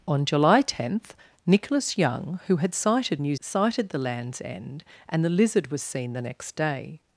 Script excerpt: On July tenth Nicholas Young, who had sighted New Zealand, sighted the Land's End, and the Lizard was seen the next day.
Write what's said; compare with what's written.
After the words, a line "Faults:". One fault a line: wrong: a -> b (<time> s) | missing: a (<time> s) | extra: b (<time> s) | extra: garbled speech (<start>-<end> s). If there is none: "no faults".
On July tenth Nicholas Young, who had sighted New Sighted the Land's End, and the Lizard was seen the next day.
Faults:
missing: Zealand (3.3 s)